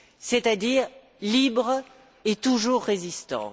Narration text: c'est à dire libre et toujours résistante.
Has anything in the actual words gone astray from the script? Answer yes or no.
no